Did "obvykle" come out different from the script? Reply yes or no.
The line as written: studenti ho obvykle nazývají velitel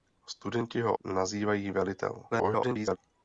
yes